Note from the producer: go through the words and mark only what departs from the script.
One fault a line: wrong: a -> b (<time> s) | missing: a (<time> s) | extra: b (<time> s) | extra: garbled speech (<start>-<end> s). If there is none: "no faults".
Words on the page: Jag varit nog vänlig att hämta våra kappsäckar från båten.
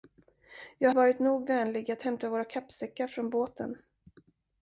no faults